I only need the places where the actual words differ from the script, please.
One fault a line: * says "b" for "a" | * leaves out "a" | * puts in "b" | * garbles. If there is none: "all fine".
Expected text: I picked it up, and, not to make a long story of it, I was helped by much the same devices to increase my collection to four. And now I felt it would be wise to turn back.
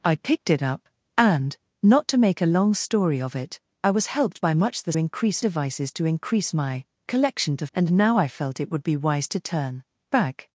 * says "increase" for "same"
* leaves out "four"